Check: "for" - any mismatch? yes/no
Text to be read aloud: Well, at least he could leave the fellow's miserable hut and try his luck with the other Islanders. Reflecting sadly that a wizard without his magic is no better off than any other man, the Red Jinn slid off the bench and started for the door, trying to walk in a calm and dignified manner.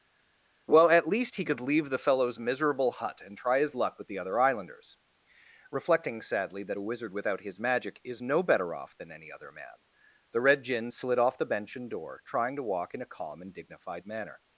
yes